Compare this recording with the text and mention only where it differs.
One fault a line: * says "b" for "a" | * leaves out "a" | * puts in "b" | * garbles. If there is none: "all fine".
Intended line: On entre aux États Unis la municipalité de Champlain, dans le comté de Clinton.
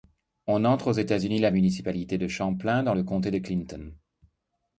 all fine